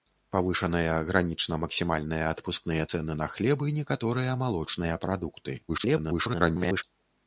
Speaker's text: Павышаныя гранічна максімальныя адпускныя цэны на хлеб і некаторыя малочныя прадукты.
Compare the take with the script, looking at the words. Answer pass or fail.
fail